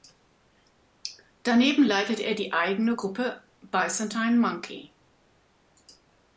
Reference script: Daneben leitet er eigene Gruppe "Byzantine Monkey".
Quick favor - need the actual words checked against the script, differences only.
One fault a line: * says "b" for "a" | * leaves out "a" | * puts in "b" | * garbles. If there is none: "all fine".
* puts in "die"